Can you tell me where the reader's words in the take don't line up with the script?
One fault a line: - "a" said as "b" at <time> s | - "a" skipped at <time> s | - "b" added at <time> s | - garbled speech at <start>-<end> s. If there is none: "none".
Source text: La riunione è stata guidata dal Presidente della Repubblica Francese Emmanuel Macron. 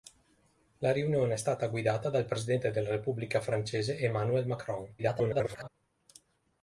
- garbled speech at 5.0-5.7 s